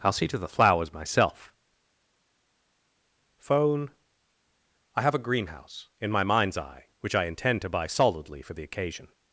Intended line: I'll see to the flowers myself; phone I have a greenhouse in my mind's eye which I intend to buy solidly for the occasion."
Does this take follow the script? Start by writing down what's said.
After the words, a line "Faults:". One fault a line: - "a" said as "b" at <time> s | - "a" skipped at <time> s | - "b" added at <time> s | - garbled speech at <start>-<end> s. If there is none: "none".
I'll see to the flowers myself; phone I have a greenhouse in my mind's eye which I intend to buy solidly for the occasion."
Faults:
none